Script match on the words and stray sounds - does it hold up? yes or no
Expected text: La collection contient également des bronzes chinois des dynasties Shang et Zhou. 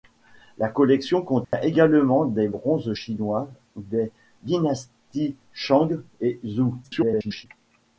no